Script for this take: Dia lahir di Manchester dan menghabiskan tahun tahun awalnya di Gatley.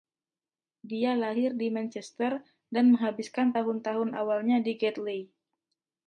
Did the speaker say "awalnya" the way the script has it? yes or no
yes